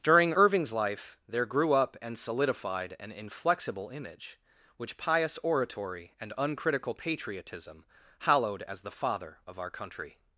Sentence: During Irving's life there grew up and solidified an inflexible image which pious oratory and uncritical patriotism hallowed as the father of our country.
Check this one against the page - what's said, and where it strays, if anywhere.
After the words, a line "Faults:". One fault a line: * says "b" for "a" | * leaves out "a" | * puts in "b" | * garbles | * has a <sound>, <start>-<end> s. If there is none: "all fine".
During Irving's life there grew up and solidified an inflexible image which pious oratory and uncritical patriotism hallowed as the father of our country.
Faults:
all fine